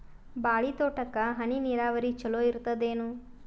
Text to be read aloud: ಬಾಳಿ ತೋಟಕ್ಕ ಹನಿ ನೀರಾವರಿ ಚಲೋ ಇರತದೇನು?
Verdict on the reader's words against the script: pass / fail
pass